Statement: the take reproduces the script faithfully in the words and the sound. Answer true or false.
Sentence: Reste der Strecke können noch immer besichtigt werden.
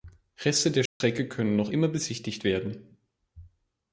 false